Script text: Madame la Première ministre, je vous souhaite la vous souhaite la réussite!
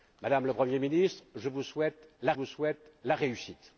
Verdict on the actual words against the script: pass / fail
pass